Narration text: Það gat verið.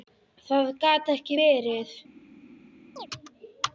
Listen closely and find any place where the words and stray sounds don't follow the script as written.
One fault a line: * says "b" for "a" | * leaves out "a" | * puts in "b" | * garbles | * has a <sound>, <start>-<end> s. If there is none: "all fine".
* puts in "ekki"
* has a chirp, 3.0-3.1 s